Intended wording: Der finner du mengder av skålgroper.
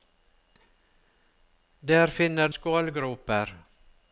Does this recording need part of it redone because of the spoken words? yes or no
yes